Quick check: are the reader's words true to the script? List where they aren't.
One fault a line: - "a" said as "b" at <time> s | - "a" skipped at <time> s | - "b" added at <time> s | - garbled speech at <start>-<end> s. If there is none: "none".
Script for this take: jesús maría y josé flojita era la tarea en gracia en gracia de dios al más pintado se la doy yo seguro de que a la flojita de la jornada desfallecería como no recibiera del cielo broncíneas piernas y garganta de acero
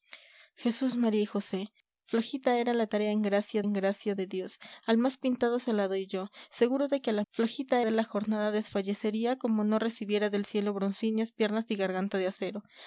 none